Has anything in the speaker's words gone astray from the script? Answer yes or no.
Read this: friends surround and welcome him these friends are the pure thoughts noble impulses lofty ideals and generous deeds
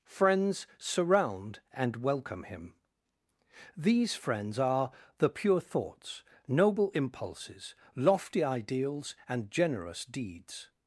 no